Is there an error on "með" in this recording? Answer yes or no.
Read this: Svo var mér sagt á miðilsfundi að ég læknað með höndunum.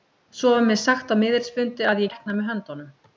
no